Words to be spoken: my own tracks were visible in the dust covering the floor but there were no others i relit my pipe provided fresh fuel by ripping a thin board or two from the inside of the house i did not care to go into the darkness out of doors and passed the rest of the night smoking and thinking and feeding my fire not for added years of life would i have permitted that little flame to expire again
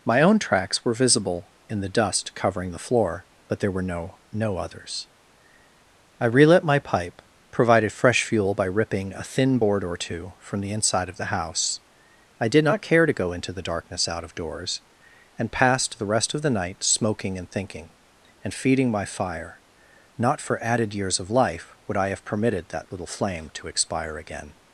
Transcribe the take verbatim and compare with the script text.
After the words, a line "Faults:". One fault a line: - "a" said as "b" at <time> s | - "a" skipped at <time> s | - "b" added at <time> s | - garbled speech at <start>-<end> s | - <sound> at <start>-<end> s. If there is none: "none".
my own tracks were visible in the dust covering the floor but there were no no others i relit my pipe provided fresh fuel by ripping a thin board or two from the inside of the house i did not care to go into the darkness out of doors and passed the rest of the night smoking and thinking and feeding my fire not for added years of life would i have permitted that little flame to expire again
Faults:
- "no" added at 4.3 s